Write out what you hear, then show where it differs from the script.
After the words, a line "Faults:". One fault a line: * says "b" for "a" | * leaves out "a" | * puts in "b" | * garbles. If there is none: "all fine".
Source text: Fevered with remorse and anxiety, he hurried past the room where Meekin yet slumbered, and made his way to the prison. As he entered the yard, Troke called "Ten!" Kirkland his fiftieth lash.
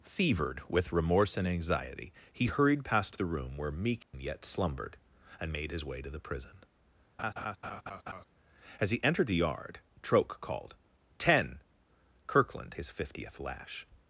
Fevered with remorse and anxiety, he hurried past the room where Meekin yet slumbered, and made his way to the prison. As he entered the yard, Troke called "Ten!" Kirkland his fiftieth lash.
Faults:
all fine